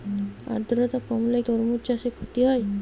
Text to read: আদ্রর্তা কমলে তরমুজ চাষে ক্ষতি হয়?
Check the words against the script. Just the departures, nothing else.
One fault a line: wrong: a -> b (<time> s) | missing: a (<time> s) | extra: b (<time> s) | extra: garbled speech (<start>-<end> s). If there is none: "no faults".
no faults